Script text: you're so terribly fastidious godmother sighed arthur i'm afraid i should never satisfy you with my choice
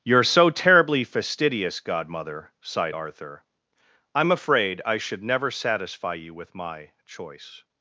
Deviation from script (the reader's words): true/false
false